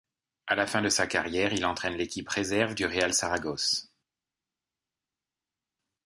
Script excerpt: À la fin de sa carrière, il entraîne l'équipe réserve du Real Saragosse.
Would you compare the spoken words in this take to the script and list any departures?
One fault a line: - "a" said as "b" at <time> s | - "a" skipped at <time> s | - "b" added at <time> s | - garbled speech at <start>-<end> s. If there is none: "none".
none